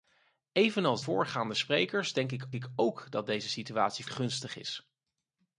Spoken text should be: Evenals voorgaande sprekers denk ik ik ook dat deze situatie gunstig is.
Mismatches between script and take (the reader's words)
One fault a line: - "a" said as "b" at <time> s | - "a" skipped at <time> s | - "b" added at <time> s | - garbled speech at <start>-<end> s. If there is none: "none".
none